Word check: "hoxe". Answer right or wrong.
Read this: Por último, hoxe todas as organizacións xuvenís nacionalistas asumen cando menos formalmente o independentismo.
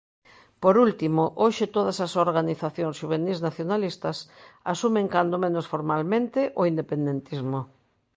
right